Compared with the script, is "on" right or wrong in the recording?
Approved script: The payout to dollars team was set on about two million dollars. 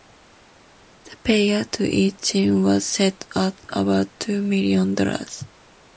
wrong